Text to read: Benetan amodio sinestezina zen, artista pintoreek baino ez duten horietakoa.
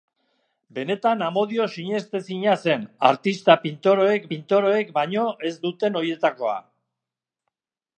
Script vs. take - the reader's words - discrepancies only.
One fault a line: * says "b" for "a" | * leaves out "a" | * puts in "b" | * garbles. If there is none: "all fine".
* puts in "pintoreek"